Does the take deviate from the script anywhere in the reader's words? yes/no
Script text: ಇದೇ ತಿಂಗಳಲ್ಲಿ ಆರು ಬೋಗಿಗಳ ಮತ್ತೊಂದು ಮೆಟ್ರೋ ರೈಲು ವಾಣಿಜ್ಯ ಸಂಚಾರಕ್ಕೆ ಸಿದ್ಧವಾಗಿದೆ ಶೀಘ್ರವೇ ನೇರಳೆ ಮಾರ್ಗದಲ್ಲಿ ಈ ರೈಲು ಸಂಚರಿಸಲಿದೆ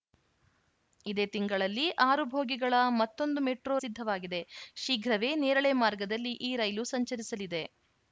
yes